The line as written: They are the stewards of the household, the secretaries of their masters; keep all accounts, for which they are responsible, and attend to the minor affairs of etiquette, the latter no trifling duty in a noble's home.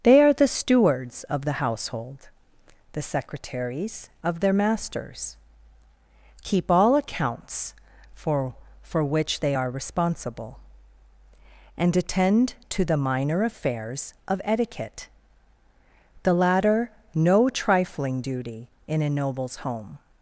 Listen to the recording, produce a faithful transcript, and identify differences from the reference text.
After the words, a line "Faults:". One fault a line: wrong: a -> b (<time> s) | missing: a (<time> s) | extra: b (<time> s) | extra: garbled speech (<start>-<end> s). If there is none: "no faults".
They are the stewards of the household, the secretaries of their masters; keep all accounts, for for which they are responsible, and attend to the minor affairs of etiquette, the latter no trifling duty in a noble's home.
Faults:
extra: for (8.8 s)